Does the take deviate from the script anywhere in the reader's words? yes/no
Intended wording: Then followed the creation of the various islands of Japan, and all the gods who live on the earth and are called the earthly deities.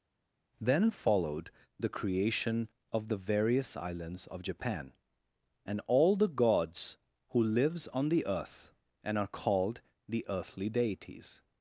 yes